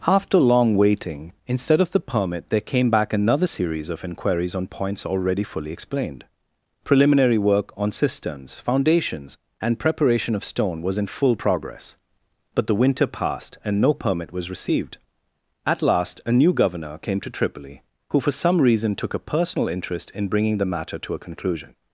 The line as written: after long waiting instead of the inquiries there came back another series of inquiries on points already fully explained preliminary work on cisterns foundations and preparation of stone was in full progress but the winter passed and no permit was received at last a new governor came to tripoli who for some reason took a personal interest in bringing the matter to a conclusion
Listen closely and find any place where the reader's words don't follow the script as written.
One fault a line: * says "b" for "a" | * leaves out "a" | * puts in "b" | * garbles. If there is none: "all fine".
* says "permit" for "inquiries"